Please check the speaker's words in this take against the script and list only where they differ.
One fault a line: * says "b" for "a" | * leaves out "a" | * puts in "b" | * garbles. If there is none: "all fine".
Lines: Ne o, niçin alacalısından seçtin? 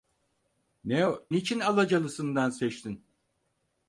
all fine